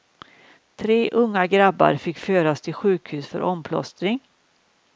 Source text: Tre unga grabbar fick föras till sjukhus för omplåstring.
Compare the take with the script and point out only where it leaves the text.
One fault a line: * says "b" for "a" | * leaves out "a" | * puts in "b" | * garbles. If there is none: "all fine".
all fine